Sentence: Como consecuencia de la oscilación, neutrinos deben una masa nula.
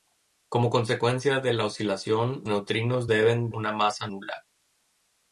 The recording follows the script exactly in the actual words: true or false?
true